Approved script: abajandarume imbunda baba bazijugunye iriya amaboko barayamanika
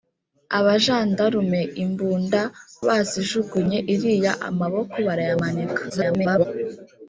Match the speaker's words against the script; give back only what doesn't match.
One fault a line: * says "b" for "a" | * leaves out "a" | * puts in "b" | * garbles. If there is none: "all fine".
* leaves out "baba"
* garbles